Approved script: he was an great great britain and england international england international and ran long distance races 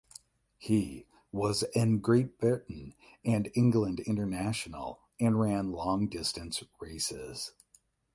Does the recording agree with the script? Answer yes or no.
no